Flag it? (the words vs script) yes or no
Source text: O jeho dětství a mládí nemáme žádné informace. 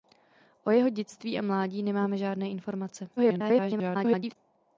yes